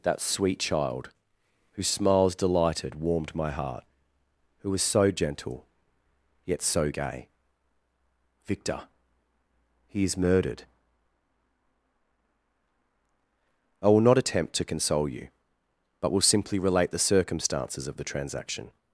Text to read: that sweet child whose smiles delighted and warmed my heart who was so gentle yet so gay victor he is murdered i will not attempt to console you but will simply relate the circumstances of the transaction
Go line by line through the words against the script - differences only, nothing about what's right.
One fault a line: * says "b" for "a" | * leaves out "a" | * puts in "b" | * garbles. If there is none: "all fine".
* leaves out "and"